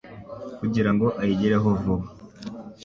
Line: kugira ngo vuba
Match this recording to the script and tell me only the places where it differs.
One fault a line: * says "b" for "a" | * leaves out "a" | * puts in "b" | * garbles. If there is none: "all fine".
* puts in "ayigereho"